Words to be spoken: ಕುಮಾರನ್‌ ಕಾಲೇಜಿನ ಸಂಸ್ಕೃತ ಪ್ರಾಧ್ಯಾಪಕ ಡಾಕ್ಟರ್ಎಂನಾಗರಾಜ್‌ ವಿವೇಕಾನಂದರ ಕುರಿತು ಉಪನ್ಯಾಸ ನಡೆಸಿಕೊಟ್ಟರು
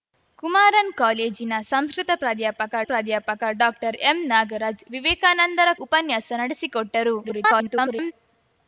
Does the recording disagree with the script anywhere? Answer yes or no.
yes